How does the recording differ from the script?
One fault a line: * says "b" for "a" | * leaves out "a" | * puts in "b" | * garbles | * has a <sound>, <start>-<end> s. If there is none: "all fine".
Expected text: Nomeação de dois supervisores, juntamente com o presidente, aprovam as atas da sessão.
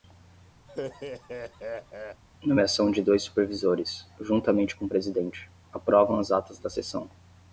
* has a laugh, 0.7-2.2 s